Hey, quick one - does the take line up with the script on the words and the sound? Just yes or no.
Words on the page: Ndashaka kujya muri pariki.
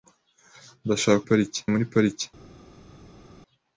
no